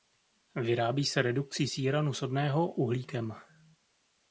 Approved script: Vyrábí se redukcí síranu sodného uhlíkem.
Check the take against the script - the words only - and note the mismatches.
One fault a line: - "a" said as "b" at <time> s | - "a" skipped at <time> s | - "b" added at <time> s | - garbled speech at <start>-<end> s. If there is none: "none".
none